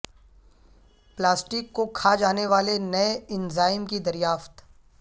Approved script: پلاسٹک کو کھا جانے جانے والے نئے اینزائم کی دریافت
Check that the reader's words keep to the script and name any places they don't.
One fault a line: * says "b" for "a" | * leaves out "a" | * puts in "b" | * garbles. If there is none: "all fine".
* leaves out "جانے"